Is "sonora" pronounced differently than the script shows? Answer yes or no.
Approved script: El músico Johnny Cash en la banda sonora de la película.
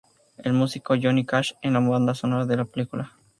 no